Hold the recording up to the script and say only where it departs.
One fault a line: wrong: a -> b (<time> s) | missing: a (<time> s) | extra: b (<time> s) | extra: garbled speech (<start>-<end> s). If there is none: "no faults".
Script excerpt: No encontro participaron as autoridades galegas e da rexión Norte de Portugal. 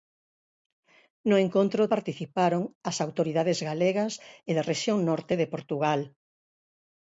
no faults